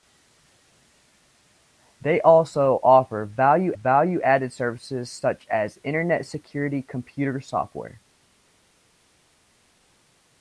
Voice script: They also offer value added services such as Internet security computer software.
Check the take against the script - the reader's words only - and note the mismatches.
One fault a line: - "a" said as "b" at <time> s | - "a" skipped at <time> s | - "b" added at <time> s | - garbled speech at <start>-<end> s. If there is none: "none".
- "value" added at 3.7 s